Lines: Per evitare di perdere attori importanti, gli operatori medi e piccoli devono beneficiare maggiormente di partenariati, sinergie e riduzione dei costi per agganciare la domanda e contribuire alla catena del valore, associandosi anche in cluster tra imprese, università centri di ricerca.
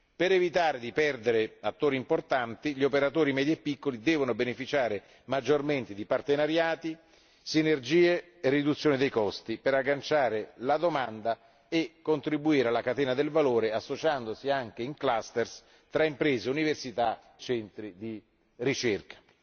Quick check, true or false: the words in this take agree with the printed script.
true